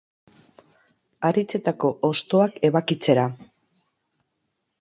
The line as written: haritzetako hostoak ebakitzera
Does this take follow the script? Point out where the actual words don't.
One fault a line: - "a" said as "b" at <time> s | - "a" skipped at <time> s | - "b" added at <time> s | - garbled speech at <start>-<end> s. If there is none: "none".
none